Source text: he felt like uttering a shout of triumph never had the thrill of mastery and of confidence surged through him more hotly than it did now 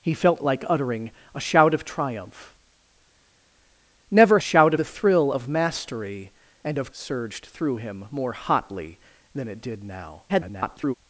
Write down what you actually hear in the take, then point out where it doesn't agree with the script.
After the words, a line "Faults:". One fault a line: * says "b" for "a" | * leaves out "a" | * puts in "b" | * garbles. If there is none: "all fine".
he felt like uttering a shout of triumph never shout the thrill of mastery and of surged through him more hotly than it did now [garbled]
Faults:
* says "shout" for "had"
* leaves out "confidence"
* garbles